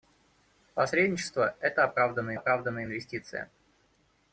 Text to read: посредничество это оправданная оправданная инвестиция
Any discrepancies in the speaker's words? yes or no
no